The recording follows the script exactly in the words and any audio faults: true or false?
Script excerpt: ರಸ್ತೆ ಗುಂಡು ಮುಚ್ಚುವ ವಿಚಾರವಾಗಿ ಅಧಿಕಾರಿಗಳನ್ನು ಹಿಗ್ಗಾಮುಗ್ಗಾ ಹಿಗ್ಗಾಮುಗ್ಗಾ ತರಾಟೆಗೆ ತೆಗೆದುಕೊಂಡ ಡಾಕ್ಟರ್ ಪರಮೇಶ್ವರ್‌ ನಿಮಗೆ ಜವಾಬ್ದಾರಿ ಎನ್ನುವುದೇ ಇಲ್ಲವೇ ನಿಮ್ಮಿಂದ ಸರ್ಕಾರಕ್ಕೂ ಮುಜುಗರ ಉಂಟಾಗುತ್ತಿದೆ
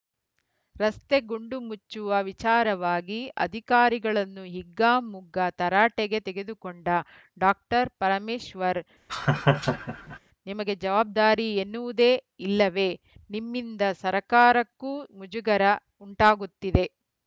false